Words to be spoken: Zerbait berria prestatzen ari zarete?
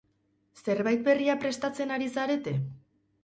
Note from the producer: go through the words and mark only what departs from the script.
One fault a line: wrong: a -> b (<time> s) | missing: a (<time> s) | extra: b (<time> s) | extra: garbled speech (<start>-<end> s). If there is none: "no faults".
no faults